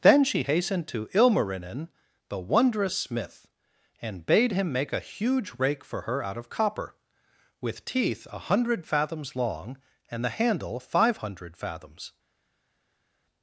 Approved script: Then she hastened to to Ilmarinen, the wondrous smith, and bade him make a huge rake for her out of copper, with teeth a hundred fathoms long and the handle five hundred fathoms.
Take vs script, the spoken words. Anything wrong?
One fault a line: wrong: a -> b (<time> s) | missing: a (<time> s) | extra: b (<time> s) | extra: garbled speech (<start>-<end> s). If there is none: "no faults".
missing: to (1.1 s)